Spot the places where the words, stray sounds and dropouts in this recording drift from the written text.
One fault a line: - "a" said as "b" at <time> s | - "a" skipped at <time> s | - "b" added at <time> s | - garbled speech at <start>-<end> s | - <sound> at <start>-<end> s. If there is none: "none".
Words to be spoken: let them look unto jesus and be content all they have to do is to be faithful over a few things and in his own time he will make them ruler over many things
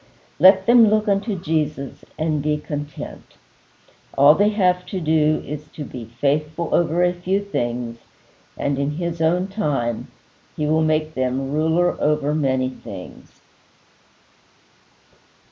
none